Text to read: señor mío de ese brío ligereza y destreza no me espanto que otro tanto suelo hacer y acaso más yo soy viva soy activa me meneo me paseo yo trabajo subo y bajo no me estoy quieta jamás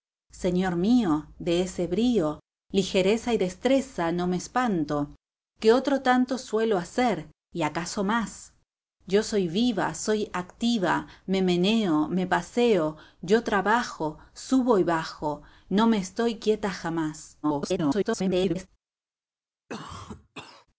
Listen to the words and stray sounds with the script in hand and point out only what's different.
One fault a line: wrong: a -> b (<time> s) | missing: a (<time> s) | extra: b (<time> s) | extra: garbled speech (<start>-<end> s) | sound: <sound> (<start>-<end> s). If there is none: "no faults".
extra: garbled speech (17.4-18.7 s)
sound: cough (19.7-20.7 s)